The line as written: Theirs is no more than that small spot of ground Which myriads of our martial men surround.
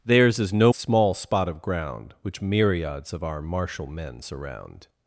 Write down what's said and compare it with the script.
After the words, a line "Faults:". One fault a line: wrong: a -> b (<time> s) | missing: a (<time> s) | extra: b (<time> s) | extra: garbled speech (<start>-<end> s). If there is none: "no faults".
Theirs is no small spot of ground Which myriads of our martial men surround.
Faults:
missing: more than that (0.7 s)